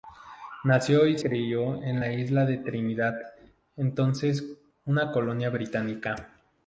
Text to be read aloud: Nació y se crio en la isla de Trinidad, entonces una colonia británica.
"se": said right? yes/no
no